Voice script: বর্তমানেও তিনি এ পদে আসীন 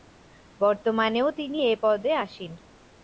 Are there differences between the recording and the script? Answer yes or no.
no